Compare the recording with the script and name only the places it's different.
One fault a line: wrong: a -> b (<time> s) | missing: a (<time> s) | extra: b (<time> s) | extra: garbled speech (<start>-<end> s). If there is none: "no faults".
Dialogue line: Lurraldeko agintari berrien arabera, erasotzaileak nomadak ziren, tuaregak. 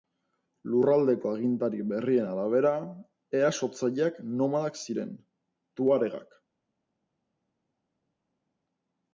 no faults